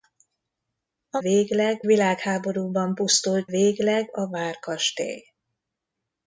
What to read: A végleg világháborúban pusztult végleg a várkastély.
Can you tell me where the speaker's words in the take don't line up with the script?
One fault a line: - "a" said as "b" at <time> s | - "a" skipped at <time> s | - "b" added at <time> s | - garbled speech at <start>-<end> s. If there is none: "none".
none